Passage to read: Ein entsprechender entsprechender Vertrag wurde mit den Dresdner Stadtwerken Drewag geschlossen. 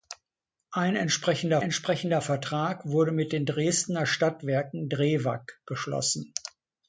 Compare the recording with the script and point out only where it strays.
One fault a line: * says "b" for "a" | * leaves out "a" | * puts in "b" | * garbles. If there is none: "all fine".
all fine